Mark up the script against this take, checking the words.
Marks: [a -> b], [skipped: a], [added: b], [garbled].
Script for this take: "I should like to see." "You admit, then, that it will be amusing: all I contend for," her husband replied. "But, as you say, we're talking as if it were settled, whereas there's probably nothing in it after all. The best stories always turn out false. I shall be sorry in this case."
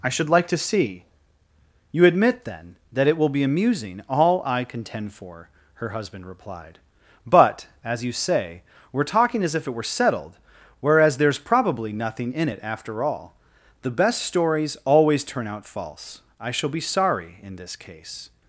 "I should like to see." "You admit, then, that it will be amusing: all I contend for," her husband replied. "But, as you say, we're talking as if it were settled, whereas there's probably nothing in it after all. The best stories always turn out false. I shall be sorry in this case."